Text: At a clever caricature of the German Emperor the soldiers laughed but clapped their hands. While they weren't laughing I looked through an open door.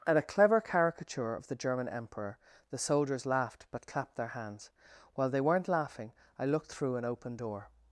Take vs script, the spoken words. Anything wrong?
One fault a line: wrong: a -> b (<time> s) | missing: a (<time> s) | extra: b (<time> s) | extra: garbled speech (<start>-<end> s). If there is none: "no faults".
no faults